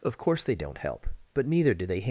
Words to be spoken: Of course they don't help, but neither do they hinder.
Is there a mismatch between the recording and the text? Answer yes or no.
yes